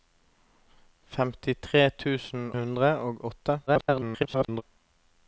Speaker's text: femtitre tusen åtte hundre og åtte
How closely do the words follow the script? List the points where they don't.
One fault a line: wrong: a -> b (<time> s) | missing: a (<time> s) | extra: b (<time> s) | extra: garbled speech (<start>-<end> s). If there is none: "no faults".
missing: åtte (2.5 s)
extra: garbled speech (3.7-4.6 s)